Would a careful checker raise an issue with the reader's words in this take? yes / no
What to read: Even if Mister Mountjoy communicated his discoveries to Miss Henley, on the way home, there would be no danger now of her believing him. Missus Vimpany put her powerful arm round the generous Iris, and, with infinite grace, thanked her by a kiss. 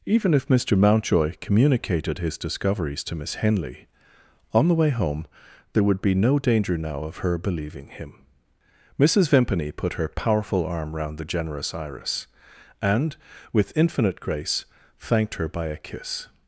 no